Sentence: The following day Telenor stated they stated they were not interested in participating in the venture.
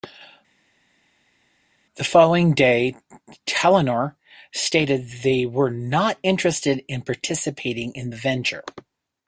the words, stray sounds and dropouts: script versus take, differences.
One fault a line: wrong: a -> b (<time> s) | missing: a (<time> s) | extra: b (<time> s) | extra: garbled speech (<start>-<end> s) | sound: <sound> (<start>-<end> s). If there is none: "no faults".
missing: stated they (5.4 s)